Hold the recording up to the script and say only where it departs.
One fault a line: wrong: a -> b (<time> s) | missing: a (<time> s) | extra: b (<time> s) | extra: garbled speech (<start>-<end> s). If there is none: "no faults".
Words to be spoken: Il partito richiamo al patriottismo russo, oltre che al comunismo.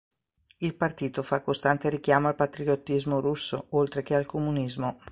extra: fa costante (1.2 s)